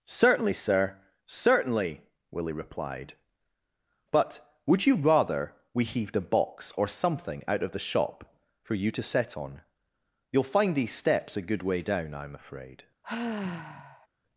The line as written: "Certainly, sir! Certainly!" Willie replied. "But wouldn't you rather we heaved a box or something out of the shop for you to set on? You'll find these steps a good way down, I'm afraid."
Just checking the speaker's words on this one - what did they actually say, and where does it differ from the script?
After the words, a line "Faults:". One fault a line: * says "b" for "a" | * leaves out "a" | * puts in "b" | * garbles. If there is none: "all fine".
"Certainly, sir! Certainly!" Willie replied. "But would you rather we heaved a box or something out of the shop for you to set on? You'll find these steps a good way down, I'm afraid."
Faults:
* says "would" for "wouldn't"